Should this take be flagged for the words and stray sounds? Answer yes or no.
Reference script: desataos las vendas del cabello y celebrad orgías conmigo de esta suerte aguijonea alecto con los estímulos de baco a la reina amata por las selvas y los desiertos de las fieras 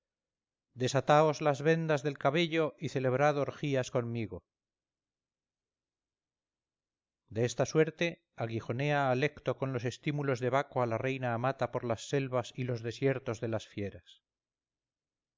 no